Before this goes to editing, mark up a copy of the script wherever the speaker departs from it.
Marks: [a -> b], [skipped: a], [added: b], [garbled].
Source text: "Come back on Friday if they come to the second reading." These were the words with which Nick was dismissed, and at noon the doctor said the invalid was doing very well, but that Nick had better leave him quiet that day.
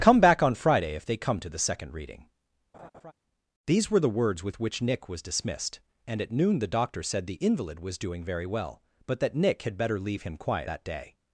"Come back on Friday if they come to the second reading." These were the words with which Nick was dismissed, and at noon the doctor said the invalid was doing very well, but that Nick had better leave him quiet that day.